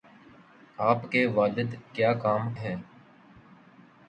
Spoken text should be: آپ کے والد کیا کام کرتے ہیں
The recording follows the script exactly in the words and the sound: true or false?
false